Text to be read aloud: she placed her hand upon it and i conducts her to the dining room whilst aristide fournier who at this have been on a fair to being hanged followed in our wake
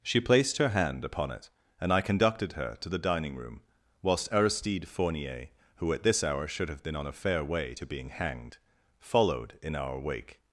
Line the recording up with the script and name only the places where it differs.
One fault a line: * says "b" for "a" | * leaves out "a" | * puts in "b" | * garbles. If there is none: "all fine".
* says "conducted" for "conducts"
* puts in "hour should"
* puts in "way"